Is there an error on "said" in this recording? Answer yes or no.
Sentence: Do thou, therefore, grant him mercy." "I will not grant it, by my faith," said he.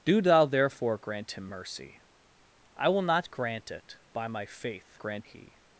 yes